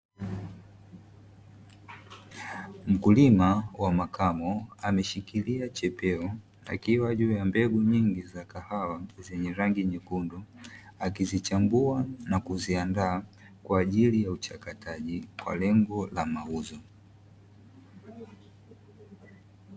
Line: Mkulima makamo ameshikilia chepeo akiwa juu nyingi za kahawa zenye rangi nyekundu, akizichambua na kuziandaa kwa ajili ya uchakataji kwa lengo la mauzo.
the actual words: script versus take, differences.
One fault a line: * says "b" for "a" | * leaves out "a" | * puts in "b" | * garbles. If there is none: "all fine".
* puts in "wa"
* puts in "ya mbegu"